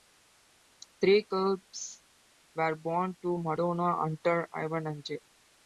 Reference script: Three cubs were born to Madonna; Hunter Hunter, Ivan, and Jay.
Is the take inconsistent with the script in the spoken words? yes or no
yes